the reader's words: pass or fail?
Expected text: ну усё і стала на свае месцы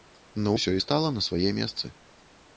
pass